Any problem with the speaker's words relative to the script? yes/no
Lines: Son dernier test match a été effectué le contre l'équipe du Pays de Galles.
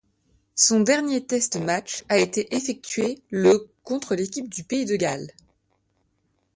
no